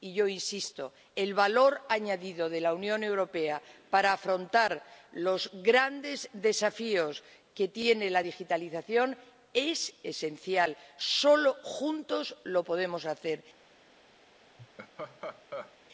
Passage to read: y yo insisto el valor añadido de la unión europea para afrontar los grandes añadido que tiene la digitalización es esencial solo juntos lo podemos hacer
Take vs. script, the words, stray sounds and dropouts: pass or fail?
fail